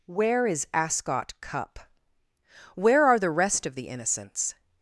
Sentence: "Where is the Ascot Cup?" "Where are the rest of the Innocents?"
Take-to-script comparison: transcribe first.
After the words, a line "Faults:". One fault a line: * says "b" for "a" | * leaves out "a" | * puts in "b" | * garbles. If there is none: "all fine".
"Where is Ascot Cup?" "Where are the rest of the Innocents?"
Faults:
* leaves out "the"